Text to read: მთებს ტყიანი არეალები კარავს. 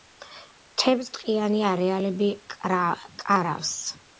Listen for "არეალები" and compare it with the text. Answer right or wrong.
right